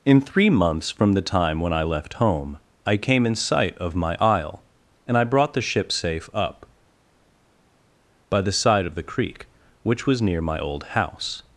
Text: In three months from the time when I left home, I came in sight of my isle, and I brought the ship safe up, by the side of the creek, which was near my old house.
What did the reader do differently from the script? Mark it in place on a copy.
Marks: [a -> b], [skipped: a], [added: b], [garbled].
In three months from the time when I left home, I came in sight of my isle, and I brought the ship safe up, by the side of the creek, which was near my old house.